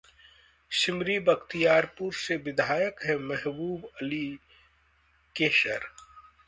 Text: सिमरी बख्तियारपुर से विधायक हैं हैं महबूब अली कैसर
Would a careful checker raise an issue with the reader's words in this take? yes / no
yes